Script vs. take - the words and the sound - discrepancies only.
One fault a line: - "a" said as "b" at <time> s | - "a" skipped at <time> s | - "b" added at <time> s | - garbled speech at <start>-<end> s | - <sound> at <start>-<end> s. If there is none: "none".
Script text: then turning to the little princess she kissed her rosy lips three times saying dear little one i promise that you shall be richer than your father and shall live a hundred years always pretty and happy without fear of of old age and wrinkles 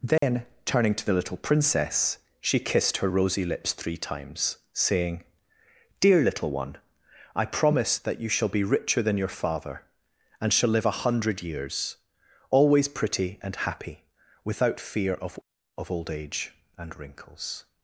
- dropout at 0.2-0.2 s